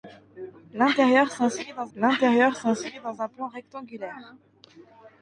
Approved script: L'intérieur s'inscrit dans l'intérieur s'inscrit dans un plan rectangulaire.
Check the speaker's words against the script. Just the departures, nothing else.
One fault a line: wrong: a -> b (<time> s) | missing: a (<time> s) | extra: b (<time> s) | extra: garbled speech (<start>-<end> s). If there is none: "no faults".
no faults